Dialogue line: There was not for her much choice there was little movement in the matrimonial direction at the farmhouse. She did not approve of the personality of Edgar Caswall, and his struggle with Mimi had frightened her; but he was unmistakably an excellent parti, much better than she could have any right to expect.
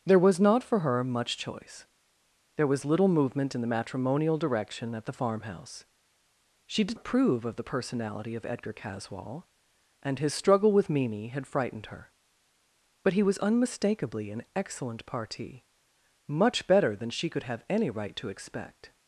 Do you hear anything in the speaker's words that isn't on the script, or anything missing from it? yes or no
yes